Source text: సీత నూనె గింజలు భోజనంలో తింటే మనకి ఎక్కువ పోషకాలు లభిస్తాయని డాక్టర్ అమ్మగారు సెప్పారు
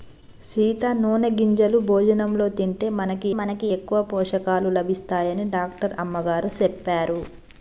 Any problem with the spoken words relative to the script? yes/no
yes